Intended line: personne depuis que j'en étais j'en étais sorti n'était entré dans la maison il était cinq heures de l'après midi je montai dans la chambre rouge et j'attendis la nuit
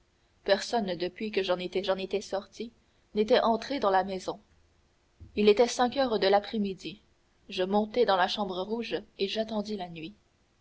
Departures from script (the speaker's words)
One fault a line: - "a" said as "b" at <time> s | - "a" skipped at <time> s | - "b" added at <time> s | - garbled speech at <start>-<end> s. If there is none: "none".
none